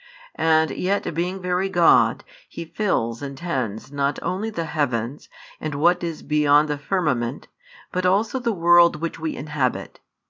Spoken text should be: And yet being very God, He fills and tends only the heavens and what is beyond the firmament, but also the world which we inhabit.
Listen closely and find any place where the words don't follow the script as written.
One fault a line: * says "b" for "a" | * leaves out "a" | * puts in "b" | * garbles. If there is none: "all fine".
* puts in "not"